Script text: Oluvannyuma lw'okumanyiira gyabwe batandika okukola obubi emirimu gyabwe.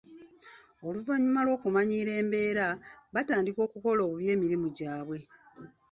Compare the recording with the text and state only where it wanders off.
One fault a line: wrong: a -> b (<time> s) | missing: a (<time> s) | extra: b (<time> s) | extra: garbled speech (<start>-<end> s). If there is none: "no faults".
wrong: gyabwe -> embeera (2.2 s)